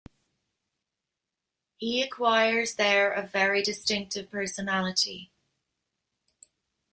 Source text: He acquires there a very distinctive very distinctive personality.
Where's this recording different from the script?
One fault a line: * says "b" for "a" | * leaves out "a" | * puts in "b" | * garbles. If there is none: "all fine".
* leaves out "very distinctive"